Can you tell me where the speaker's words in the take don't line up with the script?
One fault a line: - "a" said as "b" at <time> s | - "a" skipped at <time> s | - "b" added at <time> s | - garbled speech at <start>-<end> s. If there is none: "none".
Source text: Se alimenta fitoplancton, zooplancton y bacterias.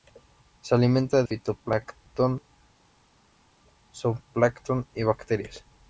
none